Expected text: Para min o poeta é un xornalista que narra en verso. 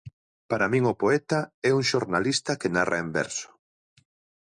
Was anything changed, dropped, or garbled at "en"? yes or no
no